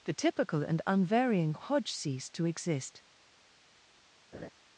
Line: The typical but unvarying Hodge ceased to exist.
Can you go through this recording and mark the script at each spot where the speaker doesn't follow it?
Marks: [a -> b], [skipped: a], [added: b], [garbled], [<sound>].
The typical [but -> and] unvarying Hodge ceased to exist. [laugh]